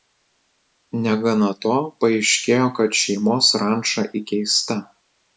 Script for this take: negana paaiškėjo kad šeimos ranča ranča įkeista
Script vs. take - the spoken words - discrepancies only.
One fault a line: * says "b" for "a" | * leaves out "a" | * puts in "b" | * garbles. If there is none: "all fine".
* puts in "to"
* leaves out "ranča"